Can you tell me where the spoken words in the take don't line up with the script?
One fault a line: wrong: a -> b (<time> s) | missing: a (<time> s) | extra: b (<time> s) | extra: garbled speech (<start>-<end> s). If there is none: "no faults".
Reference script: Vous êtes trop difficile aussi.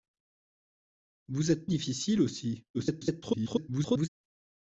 missing: trop (1.7 s)
extra: garbled speech (2.7-4.1 s)